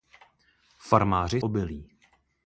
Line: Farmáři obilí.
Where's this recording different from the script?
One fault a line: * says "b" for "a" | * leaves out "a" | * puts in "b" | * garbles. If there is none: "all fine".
all fine